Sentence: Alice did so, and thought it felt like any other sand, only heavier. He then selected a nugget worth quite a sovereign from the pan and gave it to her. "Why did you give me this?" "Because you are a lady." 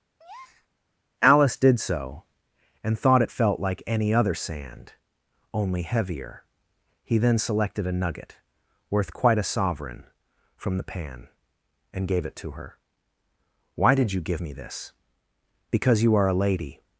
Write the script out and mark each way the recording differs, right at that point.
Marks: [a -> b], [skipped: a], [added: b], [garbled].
Alice did so, and thought it felt like any other sand, only heavier. He then selected a nugget worth quite a sovereign from the pan and gave it to her. "Why did you give me this?" "Because you are a lady."